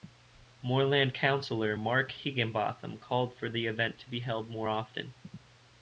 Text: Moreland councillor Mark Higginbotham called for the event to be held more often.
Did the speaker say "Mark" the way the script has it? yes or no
yes